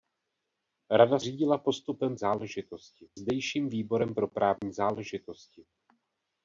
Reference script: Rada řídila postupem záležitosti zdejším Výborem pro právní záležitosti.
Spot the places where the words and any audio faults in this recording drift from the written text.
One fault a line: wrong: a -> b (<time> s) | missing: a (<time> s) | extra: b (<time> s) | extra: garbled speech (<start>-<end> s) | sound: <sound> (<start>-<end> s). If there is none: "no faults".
sound: dropout (4.6-4.6 s)